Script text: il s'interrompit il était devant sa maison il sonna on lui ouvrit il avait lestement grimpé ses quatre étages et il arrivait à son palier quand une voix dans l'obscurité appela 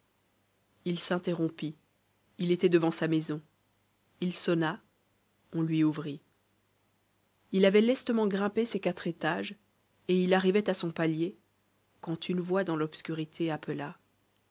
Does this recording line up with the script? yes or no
yes